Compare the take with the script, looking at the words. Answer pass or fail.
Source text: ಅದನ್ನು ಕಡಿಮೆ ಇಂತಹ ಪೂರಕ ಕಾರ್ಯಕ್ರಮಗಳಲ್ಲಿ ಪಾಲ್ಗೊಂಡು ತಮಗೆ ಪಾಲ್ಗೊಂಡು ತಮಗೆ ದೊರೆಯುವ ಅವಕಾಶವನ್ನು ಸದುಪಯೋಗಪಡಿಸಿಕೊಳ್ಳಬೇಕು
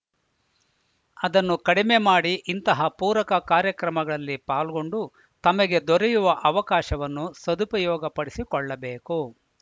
fail